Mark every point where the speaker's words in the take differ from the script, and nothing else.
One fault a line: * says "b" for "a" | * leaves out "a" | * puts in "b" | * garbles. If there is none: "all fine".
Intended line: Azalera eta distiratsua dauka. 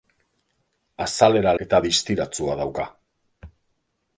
all fine